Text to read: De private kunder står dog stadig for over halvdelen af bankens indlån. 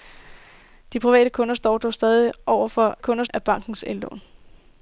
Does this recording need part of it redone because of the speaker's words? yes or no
yes